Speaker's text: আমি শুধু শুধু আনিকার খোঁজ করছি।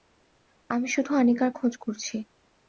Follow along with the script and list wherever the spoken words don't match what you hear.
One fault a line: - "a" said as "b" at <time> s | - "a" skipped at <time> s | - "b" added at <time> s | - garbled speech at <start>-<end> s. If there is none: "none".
- "শুধু" skipped at 1.1 s